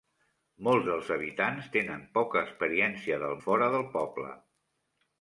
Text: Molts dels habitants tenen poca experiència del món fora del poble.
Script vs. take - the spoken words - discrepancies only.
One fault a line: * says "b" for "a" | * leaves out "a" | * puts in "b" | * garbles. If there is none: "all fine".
* leaves out "món"